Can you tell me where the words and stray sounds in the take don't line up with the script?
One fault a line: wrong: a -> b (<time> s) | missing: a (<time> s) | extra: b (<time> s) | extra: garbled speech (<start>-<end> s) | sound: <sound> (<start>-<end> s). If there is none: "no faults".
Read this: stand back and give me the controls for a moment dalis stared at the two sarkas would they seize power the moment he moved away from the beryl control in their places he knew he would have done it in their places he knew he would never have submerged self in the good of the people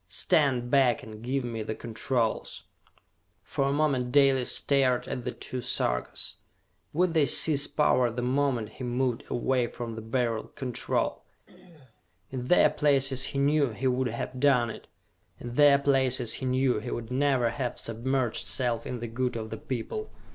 sound: throat clearing (11.5-12.0 s)